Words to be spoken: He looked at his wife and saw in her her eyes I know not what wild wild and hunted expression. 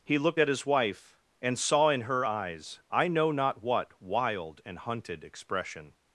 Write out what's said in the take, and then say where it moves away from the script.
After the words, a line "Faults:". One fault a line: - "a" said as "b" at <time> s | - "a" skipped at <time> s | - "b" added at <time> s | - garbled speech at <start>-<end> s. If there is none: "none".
He looked at his wife and saw in her eyes I know not what wild and hunted expression.
Faults:
- "her" skipped at 2.2 s
- "wild" skipped at 4.6 s